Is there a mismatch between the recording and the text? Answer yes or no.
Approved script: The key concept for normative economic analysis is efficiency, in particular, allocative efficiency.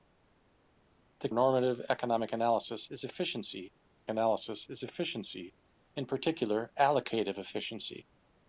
yes